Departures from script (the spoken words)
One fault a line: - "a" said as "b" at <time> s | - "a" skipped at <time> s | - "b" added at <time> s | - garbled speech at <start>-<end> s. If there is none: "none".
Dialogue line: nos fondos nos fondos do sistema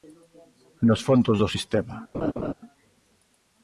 - "nos fondos" skipped at 1.4 s